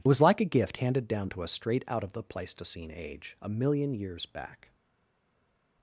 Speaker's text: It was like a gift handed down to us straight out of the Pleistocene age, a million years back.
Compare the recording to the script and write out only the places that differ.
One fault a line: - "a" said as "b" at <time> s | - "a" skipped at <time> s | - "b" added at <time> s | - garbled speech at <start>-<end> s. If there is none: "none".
none